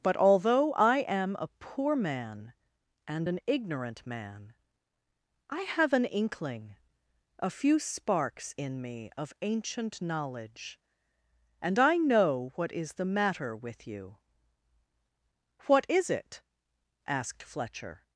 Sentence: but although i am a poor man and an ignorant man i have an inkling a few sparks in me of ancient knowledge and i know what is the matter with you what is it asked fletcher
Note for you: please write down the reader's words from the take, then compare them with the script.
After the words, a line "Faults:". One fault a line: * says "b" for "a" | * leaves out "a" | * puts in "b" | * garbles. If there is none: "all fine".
but although i am a poor man and an ignorant man i have an inkling a few sparks in me of ancient knowledge and i know what is the matter with you what is it asked fletcher
Faults:
all fine